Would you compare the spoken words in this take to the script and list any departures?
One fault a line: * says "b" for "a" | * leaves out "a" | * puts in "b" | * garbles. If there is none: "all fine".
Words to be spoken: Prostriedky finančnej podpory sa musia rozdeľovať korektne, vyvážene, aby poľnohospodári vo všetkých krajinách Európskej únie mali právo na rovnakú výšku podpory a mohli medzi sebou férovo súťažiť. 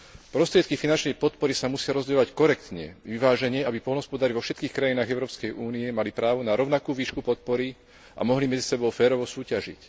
all fine